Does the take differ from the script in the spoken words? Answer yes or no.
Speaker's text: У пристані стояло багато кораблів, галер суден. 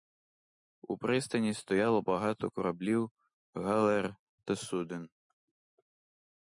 yes